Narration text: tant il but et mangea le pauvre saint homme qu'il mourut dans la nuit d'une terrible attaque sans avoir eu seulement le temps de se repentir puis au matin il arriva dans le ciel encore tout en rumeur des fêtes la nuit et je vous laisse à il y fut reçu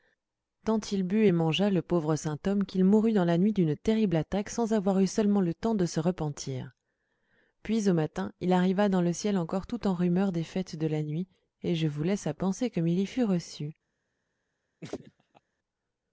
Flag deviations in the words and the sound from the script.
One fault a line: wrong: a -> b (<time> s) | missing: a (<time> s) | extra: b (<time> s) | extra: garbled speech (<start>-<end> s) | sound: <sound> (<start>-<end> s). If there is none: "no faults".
extra: de (10.8 s)
extra: penser comme (12.3 s)
sound: laugh (14.8-15.4 s)